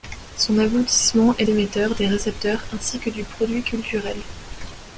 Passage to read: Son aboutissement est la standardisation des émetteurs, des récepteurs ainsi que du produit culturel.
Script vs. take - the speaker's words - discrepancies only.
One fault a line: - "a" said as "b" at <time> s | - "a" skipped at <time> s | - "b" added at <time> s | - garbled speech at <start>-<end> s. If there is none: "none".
- "la standardisation des" skipped at 1.4 s